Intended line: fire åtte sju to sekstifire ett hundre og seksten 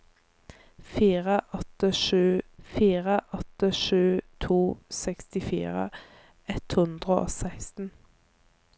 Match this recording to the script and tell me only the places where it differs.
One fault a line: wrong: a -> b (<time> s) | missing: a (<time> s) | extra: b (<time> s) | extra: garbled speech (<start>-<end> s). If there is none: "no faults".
extra: fire åtte sju (2.6 s)